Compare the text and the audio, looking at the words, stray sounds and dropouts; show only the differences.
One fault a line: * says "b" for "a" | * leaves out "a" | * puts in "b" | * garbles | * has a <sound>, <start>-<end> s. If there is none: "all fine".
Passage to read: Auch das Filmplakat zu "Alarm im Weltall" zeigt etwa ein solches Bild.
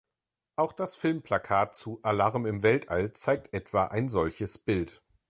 all fine